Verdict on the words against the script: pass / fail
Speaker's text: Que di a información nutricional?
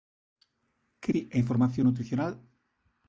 pass